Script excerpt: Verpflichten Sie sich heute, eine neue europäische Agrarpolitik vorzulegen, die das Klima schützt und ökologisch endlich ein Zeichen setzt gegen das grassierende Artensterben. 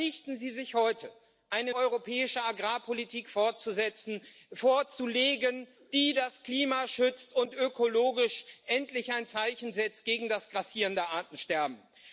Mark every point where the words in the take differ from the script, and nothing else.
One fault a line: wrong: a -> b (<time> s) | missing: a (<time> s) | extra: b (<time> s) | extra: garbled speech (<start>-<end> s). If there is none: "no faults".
missing: neue (1.8 s)